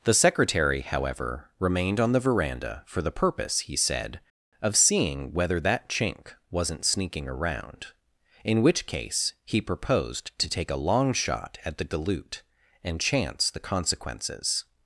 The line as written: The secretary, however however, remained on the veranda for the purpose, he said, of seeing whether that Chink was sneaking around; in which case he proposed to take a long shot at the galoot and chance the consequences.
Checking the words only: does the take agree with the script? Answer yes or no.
no